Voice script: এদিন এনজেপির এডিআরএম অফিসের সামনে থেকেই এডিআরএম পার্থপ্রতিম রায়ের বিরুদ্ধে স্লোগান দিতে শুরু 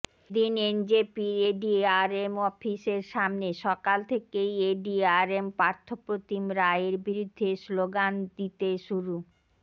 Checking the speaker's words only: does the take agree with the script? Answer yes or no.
no